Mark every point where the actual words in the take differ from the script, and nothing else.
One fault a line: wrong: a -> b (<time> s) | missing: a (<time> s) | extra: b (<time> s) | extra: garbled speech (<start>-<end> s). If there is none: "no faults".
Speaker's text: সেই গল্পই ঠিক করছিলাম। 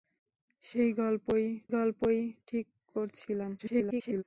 extra: গল্পই (1.7 s)
extra: garbled speech (3.6-4.2 s)